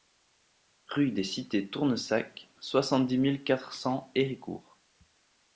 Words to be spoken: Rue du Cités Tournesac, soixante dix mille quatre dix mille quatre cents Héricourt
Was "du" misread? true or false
true